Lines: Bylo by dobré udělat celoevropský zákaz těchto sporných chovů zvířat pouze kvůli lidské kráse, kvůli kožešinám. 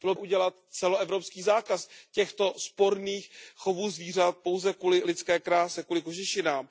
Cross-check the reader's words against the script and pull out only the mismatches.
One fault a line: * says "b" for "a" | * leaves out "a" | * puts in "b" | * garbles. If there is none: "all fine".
* leaves out "by dobré"